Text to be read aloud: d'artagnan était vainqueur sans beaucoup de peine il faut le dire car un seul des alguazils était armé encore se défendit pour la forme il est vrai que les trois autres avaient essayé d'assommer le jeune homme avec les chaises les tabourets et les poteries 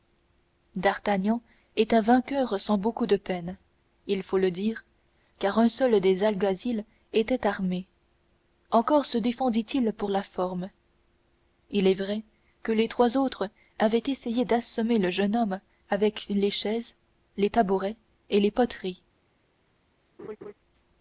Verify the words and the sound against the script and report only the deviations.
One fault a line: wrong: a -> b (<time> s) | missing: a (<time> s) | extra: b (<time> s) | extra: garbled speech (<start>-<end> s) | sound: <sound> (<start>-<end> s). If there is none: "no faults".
extra: il (9.8 s)
sound: laugh (20.2-20.5 s)